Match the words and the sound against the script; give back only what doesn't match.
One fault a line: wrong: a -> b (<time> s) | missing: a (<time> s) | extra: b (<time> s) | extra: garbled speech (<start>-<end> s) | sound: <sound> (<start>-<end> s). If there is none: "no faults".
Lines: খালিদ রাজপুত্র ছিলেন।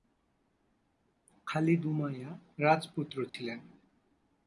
extra: উমাইয়া (1.9 s)
sound: dropout (3.3-3.3 s)